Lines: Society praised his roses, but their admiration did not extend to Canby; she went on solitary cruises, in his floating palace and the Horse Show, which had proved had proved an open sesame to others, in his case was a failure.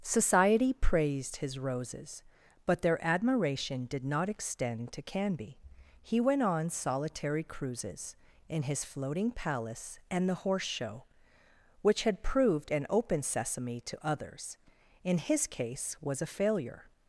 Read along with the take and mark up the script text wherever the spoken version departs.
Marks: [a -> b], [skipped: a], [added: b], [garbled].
Society praised his roses, but their admiration did not extend to Canby; [she -> he] went on solitary cruises, in his floating palace and the Horse Show, which had proved [skipped: had proved] an open sesame to others, in his case was a failure.